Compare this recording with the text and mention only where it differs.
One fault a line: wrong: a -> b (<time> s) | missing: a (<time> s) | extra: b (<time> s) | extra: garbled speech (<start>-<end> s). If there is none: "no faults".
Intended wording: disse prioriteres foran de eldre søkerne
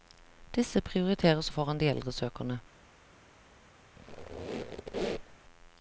no faults